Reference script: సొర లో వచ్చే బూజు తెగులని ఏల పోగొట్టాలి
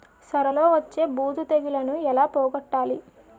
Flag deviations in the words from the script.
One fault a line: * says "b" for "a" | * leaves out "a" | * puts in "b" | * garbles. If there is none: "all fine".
all fine